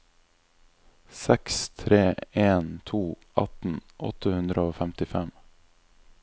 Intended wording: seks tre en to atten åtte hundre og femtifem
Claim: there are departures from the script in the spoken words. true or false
false